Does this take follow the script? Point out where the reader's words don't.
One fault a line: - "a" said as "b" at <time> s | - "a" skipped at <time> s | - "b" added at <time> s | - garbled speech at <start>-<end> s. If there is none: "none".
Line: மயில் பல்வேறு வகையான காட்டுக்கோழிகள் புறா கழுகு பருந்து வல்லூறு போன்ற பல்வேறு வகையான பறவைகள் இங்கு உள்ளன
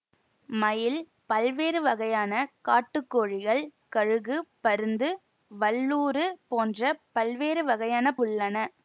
- "புறா" skipped at 3.6 s
- "பறவைகள் இங்கு" skipped at 8.1 s